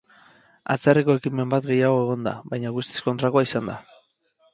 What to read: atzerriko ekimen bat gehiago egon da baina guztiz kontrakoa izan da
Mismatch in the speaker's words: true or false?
false